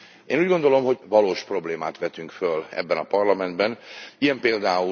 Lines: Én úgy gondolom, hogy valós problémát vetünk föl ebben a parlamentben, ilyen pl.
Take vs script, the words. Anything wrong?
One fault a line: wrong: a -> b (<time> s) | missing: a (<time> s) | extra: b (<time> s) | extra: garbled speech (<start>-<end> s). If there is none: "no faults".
no faults